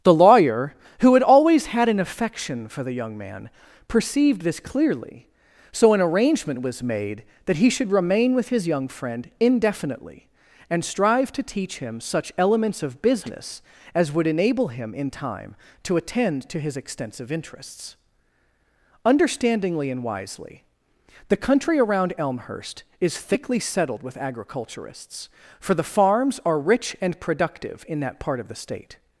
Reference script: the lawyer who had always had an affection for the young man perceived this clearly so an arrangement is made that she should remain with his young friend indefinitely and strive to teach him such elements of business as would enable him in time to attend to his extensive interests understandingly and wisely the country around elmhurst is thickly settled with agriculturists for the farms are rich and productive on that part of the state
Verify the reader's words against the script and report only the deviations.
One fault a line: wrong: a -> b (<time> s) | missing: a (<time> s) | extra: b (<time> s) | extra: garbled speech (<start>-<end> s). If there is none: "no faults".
wrong: is -> was (6.6 s)
wrong: she -> he (7.6 s)
wrong: on -> in (27.9 s)